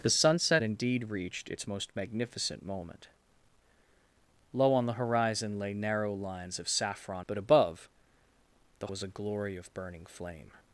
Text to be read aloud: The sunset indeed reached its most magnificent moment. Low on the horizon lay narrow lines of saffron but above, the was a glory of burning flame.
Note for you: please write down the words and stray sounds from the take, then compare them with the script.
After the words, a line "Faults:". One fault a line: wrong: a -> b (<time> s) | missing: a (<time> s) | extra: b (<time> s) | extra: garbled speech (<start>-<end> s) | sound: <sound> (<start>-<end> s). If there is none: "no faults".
The sunset indeed reached its most magnificent moment. Low on the horizon lay narrow lines of saffron but above, the was a glory of burning flame.
Faults:
no faults